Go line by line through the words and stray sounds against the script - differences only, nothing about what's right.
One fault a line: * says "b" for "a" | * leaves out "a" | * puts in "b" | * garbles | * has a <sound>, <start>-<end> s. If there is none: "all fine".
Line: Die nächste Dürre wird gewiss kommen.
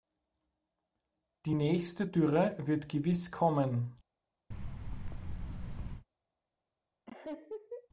* has a thud, 4.5-6.1 s
* has a laugh, 7.1-7.9 s